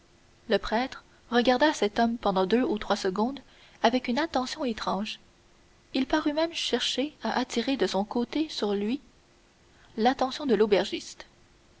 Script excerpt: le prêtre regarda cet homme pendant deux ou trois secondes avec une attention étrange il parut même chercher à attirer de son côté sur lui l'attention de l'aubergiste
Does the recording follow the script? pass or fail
pass